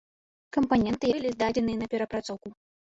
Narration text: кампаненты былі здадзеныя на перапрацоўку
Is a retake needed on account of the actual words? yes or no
no